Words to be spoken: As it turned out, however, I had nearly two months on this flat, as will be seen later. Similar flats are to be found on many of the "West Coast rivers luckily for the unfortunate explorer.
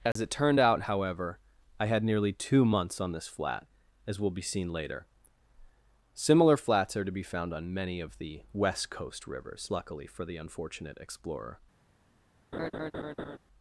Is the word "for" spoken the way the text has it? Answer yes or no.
yes